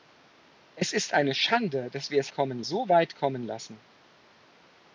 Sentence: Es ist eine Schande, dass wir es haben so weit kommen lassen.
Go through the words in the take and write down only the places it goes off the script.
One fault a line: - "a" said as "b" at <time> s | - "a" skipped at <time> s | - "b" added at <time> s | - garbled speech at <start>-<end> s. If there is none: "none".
- "haben" said as "kommen" at 2.3 s